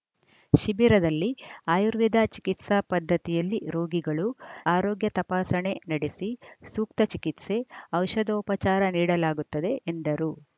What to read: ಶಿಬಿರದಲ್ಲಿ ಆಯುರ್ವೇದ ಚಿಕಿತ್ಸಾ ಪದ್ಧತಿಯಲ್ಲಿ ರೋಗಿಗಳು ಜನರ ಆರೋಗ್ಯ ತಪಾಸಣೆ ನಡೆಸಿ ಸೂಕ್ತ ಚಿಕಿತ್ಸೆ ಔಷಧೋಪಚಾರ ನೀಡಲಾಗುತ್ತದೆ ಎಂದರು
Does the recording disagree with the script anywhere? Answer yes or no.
yes